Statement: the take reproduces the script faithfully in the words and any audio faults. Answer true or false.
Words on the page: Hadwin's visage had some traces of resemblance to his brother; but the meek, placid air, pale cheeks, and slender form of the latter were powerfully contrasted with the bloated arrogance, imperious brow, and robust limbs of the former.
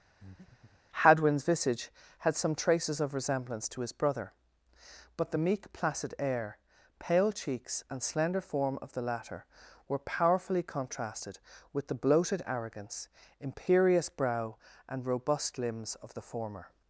false